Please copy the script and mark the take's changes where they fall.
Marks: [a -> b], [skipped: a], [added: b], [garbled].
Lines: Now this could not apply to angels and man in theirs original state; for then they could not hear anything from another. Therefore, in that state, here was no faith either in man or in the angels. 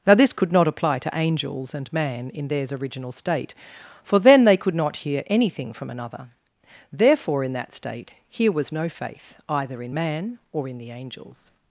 Now this could not apply to angels and man in theirs original state; for then they could not hear anything from another. Therefore, in that state, here was no faith either in man or in the angels.